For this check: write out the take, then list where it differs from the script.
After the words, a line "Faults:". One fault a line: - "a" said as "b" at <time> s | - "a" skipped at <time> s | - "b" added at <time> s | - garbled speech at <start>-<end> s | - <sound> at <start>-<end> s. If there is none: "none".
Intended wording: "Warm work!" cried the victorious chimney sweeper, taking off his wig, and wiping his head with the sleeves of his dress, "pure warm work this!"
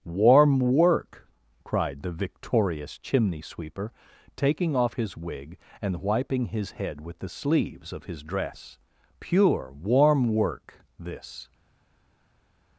"Warm work!" cried the victorious chimney sweeper, taking off his wig, and wiping his head with the sleeves of his dress, "pure warm work this!"
Faults:
none